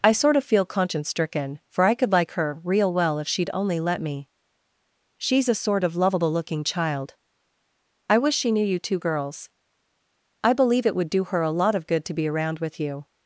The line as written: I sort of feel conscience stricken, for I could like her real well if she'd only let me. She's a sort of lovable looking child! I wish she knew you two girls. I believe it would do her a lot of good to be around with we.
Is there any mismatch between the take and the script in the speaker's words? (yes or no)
yes